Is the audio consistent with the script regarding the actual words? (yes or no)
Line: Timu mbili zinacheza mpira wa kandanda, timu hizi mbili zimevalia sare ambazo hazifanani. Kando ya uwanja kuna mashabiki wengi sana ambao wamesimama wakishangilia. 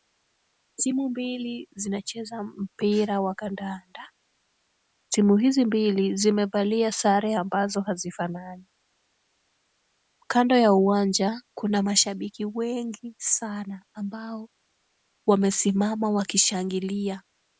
yes